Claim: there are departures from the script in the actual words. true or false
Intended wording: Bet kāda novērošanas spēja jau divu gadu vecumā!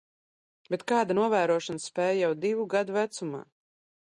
false